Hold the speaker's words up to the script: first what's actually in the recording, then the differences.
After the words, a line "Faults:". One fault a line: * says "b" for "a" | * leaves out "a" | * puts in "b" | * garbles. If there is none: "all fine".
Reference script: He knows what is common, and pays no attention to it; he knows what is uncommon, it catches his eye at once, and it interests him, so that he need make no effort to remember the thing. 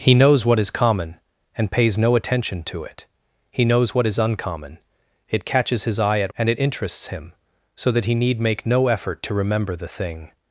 He knows what is common, and pays no attention to it; he knows what is uncommon, it catches his eye at and it interests him, so that he need make no effort to remember the thing.
Faults:
* leaves out "once"